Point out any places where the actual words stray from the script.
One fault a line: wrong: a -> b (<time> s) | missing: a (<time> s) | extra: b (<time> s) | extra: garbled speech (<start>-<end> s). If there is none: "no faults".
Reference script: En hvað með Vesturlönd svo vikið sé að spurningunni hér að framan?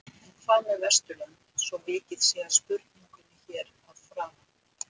no faults